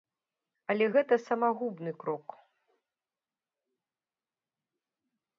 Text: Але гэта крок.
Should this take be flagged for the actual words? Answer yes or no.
yes